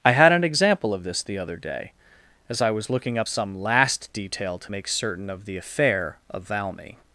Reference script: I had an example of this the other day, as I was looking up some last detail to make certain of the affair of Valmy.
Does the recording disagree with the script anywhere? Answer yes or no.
no